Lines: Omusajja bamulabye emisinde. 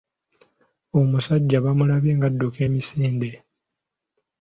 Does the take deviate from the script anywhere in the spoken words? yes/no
yes